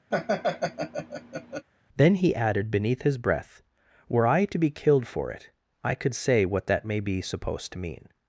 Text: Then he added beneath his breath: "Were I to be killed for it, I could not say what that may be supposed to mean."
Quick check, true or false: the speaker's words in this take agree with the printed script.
false